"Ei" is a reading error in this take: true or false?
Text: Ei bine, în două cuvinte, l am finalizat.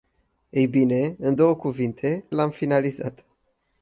false